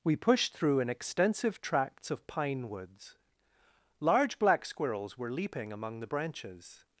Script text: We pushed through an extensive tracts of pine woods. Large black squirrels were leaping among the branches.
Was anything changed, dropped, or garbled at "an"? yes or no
no